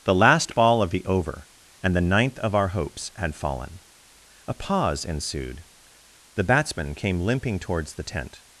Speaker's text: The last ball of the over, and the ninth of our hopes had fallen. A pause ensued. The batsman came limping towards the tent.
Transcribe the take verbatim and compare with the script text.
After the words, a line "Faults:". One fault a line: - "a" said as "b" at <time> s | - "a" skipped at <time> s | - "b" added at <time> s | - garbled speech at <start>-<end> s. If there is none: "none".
The last ball of the over, and the ninth of our hopes had fallen. A pause ensued. The batsman came limping towards the tent.
Faults:
none